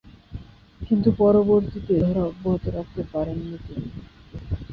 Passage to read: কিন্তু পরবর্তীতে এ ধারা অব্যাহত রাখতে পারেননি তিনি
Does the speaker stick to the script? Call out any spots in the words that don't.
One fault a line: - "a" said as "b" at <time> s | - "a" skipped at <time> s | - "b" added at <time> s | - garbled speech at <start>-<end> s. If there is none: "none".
- "এ" skipped at 1.9 s